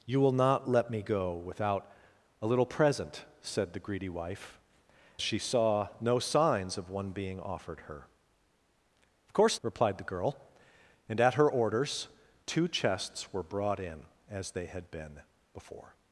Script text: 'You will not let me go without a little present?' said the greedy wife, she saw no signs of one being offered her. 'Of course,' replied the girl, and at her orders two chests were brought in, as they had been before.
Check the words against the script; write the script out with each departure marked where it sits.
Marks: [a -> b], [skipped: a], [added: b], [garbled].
'You will not let me go without a little present?' said the greedy wife, she saw no signs of one being offered her. 'Of course,' replied the girl, and at her orders two chests were brought in, as they had been before.